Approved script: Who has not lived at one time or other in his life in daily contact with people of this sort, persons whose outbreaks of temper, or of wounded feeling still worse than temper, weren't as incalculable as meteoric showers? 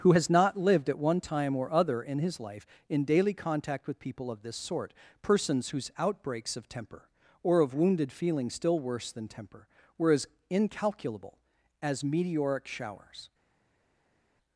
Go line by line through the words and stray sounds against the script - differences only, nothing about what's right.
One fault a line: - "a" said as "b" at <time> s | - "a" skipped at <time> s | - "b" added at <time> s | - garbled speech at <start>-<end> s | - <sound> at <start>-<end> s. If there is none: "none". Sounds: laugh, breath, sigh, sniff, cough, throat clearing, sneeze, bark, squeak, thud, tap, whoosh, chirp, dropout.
- "weren't" said as "were" at 10.0 s